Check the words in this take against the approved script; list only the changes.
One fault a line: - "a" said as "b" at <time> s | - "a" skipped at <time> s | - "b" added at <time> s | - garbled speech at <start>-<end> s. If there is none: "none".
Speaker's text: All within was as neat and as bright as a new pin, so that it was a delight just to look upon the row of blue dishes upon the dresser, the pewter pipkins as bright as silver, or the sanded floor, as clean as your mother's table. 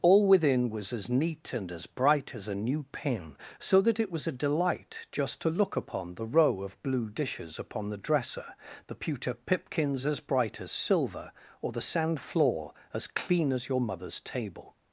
- "sanded" said as "sand" at 11.8 s